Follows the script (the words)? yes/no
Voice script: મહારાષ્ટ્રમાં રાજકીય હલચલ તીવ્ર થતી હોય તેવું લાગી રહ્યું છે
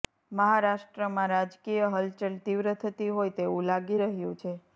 yes